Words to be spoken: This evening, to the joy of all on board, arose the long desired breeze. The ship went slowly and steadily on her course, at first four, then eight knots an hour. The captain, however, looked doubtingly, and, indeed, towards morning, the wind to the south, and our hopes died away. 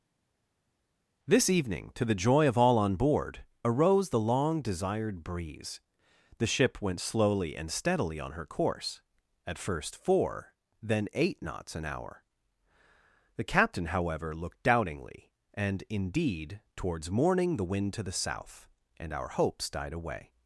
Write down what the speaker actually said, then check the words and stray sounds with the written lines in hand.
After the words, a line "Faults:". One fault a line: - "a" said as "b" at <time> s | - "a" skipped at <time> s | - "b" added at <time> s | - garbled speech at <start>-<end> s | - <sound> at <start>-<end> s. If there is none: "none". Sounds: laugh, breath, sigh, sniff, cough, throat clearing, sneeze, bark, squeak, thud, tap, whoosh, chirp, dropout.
This evening, to the joy of all on board, arose the long desired breeze. The ship went slowly and steadily on her course, at first four, then eight knots an hour. The captain, however, looked doubtingly, and, indeed, towards morning, the wind to the south, and our hopes died away.
Faults:
none